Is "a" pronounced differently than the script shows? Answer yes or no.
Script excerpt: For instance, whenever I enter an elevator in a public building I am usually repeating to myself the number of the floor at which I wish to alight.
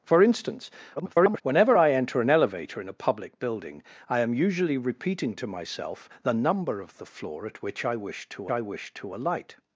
no